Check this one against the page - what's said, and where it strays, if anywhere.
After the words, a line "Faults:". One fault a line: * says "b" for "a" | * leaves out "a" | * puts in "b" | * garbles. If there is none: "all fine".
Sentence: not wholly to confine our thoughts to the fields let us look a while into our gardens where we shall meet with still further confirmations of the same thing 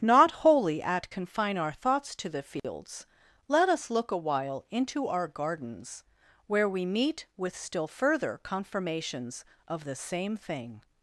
not wholly at confine our thoughts to the fields let us look a while into our gardens where we meet with still further confirmations of the same thing
Faults:
* says "at" for "to"
* leaves out "shall"